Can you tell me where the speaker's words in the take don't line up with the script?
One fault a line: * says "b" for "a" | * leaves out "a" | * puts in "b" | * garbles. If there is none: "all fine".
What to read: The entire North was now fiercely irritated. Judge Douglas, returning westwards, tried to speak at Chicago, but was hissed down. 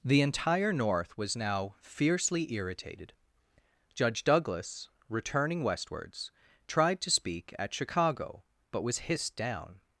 all fine